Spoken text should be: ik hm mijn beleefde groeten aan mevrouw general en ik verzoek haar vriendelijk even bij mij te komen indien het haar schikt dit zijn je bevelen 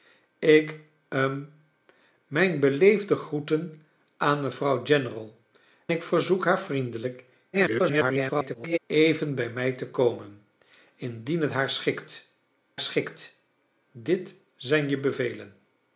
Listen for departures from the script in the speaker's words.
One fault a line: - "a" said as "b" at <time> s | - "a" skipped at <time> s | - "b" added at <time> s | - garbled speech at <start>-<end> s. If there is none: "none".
- "en" skipped at 5.4 s
- garbled speech at 7.5-8.8 s
- "schikt" added at 12.8 s